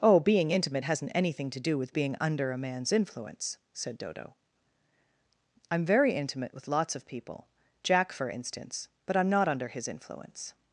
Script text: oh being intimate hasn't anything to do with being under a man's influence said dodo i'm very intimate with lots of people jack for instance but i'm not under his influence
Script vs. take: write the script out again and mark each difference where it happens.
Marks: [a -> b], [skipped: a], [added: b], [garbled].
oh being intimate hasn't anything to do with being under a man's influence said dodo i'm very intimate with lots of people jack for instance but i'm not under his influence